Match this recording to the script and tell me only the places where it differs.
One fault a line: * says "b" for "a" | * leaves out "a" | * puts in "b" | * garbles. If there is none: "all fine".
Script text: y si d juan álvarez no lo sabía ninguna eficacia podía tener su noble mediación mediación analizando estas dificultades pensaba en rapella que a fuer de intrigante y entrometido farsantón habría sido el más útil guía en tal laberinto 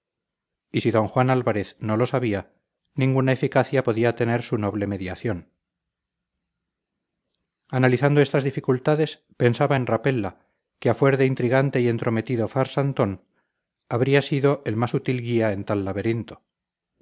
* leaves out "mediación"